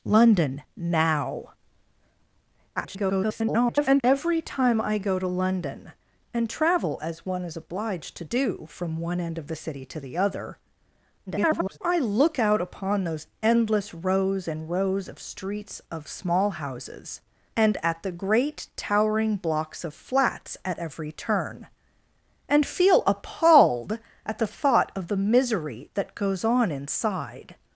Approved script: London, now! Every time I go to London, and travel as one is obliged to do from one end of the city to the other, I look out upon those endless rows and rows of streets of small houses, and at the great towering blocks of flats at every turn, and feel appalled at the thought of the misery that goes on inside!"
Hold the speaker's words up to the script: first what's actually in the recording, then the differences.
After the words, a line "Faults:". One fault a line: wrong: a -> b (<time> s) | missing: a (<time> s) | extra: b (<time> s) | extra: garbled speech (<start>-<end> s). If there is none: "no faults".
London, now! [garbled] Every time I go to London, and travel as one is obliged to do from one end of the city to the other, [garbled] I look out upon those endless rows and rows of streets of small houses, and at the great towering blocks of flats at every turn, and feel appalled at the thought of the misery that goes on inside!"
Faults:
extra: garbled speech (2.8-4.0 s)
extra: garbled speech (11.3-11.8 s)